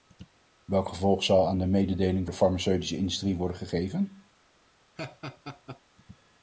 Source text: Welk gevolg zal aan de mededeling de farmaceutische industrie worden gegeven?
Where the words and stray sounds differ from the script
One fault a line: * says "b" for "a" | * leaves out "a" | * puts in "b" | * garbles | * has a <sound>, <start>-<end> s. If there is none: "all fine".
* has a laugh, 5.0-5.8 s